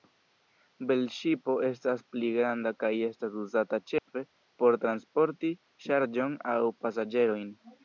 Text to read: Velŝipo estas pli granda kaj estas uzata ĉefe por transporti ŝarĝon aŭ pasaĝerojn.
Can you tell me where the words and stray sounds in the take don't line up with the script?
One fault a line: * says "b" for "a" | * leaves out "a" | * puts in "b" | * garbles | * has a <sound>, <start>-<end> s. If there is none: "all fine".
* has a dropout, 4.0-4.1 s